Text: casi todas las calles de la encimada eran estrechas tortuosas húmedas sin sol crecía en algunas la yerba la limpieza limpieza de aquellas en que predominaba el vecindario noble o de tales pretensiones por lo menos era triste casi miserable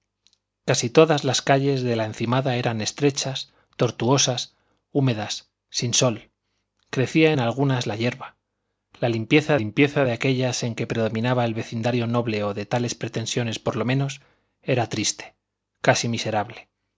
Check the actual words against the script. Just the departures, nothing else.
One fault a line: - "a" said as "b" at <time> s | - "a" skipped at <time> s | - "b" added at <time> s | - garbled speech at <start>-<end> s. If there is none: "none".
none